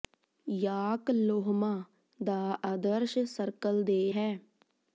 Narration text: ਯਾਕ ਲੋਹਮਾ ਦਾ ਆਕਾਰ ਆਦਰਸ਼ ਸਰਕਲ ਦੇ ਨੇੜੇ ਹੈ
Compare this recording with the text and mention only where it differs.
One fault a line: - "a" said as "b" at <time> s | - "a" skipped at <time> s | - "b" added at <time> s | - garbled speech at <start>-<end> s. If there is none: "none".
- "ਆਕਾਰ" skipped at 2.4 s
- "ਨੇੜੇ" skipped at 4.1 s